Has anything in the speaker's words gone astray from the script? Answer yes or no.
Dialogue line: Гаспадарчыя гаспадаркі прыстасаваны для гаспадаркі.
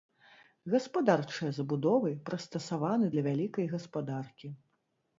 yes